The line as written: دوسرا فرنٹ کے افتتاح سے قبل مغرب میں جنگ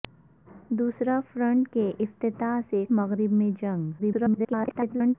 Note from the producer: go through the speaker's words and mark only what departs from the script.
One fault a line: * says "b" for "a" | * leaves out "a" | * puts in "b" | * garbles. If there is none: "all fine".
* leaves out "قبل"
* garbles